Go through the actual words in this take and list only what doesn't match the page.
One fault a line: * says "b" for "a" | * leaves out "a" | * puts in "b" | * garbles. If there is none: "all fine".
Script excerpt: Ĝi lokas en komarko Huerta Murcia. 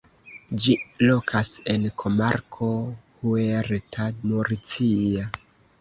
all fine